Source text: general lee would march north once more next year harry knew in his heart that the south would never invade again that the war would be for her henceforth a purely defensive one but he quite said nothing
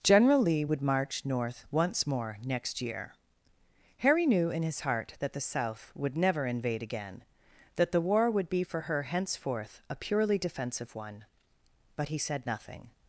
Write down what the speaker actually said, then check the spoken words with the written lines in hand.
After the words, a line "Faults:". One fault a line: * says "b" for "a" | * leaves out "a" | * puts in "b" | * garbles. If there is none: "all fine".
general lee would march north once more next year harry knew in his heart that the south would never invade again that the war would be for her henceforth a purely defensive one but he said nothing
Faults:
* leaves out "quite"